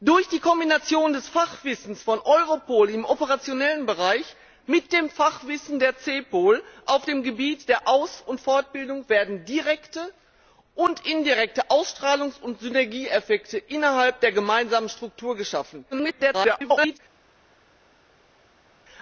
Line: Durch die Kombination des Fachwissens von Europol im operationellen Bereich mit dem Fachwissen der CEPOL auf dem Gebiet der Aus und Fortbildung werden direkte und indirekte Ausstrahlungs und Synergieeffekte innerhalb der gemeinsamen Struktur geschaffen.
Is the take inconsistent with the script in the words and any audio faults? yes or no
yes